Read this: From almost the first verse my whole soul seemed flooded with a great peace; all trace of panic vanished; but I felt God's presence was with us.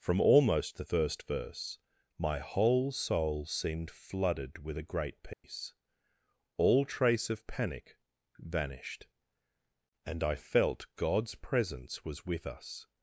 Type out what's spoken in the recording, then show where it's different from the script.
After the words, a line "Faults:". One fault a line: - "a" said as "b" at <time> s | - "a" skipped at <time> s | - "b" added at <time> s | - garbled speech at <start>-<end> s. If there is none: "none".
From almost the first verse my whole soul seemed flooded with a great peace; all trace of panic vanished; and I felt God's presence was with us.
Faults:
- "but" said as "and" at 10.1 s